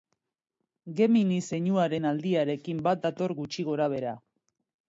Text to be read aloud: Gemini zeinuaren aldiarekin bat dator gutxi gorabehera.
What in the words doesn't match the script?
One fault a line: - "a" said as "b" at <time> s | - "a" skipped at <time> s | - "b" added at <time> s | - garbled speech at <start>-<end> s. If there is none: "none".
none